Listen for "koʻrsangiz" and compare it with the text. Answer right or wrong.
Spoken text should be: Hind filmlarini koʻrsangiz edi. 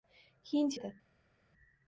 wrong